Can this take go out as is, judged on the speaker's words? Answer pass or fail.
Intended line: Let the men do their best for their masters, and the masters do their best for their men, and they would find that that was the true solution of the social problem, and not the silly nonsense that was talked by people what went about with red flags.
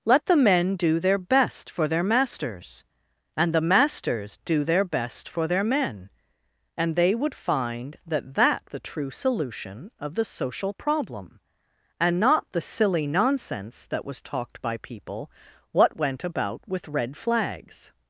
fail